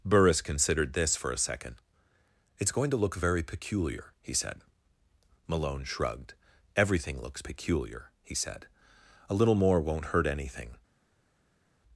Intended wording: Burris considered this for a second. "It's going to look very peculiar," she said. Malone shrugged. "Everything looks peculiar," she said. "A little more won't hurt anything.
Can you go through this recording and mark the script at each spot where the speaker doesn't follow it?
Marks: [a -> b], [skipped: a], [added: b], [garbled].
Burris considered this for a second. "It's going to look very peculiar," [she -> he] said. Malone shrugged. "Everything looks peculiar," [she -> he] said. "A little more won't hurt anything.